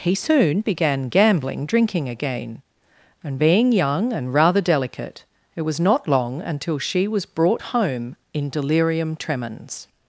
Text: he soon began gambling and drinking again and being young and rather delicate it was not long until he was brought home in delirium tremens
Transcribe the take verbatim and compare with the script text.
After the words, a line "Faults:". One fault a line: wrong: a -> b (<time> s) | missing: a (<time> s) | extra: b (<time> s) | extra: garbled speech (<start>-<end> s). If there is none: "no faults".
he soon began gambling drinking again and being young and rather delicate it was not long until she was brought home in delirium tremens
Faults:
missing: and (1.7 s)
wrong: he -> she (6.8 s)